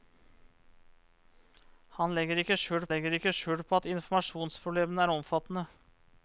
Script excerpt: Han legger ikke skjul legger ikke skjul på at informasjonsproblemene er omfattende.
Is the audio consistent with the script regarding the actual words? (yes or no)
yes